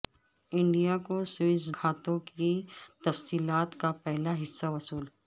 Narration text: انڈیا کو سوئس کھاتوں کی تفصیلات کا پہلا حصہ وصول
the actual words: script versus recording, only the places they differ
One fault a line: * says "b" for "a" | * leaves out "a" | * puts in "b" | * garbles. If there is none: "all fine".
all fine